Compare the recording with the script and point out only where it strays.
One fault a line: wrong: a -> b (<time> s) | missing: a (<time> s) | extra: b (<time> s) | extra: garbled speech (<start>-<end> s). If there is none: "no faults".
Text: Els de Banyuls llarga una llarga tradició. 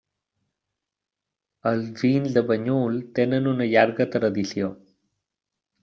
extra: vins (2.0 s)
wrong: llarga -> tenen (3.2 s)